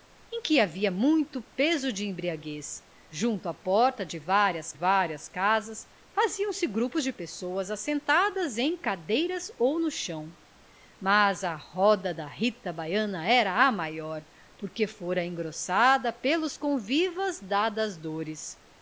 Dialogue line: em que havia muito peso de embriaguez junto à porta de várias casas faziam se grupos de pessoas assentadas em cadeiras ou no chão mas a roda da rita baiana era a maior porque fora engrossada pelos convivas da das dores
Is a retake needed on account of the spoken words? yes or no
yes